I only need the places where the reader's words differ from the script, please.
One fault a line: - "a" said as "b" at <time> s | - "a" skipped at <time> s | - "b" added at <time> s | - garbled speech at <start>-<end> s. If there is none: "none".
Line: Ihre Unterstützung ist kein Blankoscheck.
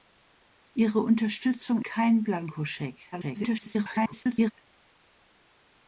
- "ist" skipped at 1.8 s
- garbled speech at 3.1-4.5 s